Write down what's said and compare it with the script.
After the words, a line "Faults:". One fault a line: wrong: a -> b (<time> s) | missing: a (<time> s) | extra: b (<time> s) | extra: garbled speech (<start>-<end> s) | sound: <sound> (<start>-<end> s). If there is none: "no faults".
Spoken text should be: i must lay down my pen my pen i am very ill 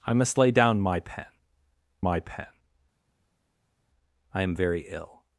i must lay down my pen my pen i am very ill
Faults:
no faults